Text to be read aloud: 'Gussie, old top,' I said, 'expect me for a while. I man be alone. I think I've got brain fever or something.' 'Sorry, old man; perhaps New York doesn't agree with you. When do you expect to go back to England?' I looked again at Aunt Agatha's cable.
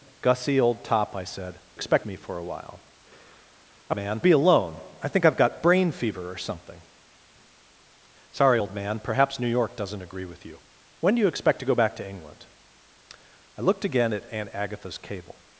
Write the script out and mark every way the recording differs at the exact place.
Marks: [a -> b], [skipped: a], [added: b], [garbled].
'Gussie, old top,' I said, 'expect me for a while. I man be alone. I think I've got brain fever or something.' 'Sorry, old man; perhaps New York doesn't agree with you. When do you expect to go back to England?' I looked again at Aunt Agatha's cable.